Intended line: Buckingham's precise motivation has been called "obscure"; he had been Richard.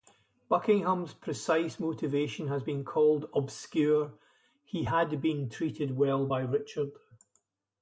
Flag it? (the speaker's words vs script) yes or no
yes